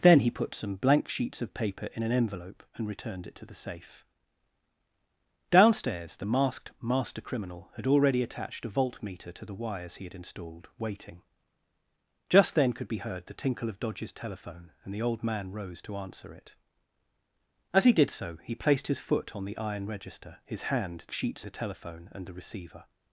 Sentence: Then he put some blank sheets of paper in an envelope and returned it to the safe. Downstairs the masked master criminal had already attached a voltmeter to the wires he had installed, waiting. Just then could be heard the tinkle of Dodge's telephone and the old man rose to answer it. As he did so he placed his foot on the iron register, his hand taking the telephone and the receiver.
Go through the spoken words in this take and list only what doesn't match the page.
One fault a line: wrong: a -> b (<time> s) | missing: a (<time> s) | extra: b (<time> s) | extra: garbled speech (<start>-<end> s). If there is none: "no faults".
wrong: taking -> sheets (21.1 s)